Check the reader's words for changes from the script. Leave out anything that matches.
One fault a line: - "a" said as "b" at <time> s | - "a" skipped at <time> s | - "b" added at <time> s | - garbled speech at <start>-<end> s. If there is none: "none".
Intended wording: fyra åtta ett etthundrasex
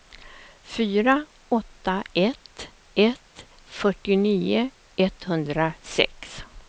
- "ett fyrtionio" added at 2.9 s